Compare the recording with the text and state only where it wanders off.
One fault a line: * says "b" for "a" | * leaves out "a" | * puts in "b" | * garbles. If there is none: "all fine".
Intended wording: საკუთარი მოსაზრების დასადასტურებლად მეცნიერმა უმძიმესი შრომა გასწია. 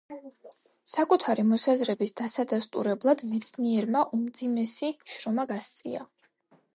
all fine